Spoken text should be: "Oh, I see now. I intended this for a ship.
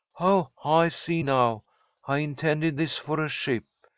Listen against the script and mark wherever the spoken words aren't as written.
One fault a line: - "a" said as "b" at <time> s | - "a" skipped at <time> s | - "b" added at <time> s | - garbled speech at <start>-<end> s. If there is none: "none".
none